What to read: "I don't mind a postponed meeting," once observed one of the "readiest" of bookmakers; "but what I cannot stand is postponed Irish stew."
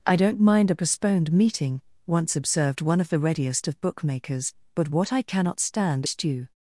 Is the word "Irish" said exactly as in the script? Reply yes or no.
no